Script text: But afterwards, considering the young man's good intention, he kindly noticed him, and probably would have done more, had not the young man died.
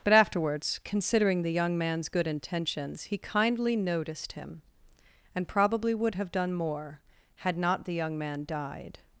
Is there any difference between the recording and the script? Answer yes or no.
yes